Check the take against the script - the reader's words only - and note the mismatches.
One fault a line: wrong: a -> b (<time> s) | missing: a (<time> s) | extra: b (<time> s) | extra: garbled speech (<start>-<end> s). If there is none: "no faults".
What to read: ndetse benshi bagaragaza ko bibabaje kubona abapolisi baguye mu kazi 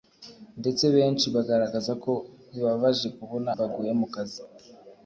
missing: abapolisi (3.5 s)